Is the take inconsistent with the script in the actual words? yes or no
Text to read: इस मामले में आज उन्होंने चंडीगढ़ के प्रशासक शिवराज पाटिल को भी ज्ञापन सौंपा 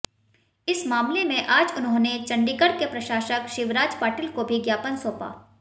no